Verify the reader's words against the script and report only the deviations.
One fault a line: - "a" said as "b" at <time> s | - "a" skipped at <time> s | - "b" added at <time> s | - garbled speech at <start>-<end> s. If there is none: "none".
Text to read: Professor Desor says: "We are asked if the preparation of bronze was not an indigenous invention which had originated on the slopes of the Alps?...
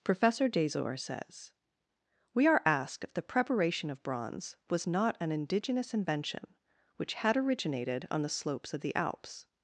none